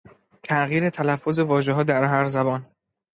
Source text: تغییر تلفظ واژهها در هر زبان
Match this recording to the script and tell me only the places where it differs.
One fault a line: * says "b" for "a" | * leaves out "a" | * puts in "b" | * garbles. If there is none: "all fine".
all fine